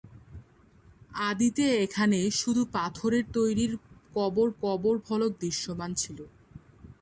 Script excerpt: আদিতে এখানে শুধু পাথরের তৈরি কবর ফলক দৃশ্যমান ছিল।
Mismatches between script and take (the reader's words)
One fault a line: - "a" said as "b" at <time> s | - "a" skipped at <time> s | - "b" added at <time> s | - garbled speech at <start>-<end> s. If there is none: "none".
- "কবর" added at 4.6 s